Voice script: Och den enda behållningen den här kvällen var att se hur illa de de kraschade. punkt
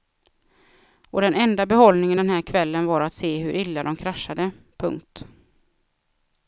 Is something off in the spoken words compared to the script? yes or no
yes